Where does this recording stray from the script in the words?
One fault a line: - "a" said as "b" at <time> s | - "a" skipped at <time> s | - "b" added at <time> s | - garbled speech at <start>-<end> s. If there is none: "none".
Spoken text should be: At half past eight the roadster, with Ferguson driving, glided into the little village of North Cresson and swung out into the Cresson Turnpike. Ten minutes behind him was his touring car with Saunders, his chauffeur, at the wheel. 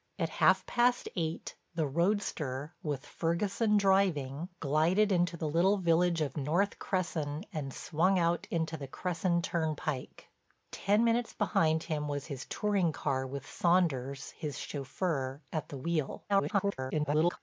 - garbled speech at 16.3-17.4 s